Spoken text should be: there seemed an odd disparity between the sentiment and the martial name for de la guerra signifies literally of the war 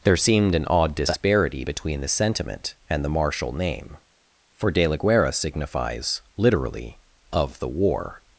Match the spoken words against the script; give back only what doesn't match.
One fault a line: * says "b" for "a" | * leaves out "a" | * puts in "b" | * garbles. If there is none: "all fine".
all fine